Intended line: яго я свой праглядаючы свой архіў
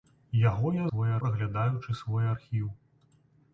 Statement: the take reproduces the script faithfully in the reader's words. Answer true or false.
true